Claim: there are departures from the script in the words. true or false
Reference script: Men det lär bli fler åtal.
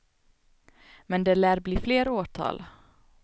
false